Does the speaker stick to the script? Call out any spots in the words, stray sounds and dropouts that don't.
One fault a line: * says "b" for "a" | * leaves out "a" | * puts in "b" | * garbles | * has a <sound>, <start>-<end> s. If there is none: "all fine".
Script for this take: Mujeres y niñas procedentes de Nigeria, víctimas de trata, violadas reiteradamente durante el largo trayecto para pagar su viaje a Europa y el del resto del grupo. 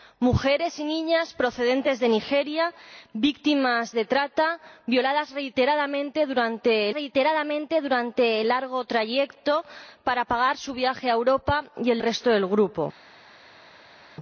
* puts in "reiteradamente durante"
* leaves out "del"